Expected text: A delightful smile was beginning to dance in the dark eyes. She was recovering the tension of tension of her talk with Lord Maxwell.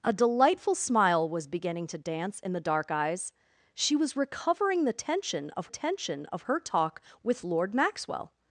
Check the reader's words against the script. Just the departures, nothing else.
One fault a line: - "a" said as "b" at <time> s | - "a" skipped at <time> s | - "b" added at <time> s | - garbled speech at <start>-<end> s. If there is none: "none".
none